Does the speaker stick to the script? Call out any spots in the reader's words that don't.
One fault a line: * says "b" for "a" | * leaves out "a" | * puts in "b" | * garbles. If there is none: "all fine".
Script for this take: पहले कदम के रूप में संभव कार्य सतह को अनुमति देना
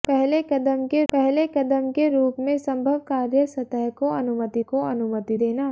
* puts in "पहले कदम के"
* puts in "को अनुमति"